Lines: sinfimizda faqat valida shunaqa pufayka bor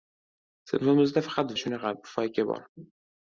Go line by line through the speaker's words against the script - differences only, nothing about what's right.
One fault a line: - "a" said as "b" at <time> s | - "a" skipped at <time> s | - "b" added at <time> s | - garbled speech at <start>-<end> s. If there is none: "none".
- "valida" skipped at 1.5 s